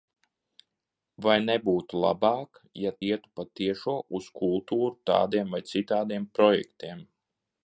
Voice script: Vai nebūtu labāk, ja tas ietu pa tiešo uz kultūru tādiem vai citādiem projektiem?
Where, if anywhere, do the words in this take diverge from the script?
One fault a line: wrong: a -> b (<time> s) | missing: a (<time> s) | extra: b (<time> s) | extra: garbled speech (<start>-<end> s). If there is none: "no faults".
missing: tas (2.9 s)